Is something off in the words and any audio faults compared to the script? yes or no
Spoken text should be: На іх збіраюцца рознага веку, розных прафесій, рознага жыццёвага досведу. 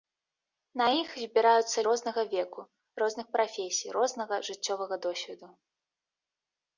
no